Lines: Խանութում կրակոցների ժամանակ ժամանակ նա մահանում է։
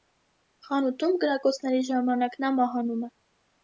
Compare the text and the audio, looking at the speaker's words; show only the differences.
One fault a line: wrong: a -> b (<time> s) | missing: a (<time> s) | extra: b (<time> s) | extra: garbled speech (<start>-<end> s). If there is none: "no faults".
missing: ժամանակ (2.4 s)